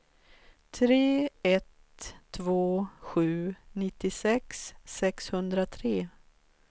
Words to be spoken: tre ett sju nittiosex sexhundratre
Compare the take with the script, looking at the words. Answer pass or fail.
fail